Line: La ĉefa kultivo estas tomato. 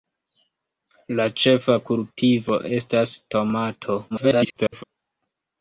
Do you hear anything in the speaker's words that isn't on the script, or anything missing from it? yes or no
yes